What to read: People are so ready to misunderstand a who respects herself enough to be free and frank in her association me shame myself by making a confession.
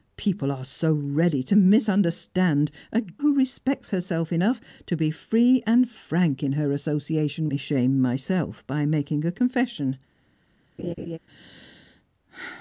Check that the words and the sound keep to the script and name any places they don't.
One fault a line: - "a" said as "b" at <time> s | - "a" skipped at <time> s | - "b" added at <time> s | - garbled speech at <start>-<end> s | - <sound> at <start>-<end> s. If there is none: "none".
- laugh at 10.8-11.2 s